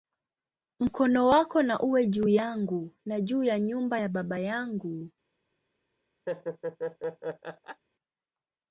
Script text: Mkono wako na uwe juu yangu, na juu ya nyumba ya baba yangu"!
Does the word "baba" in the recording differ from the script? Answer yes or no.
no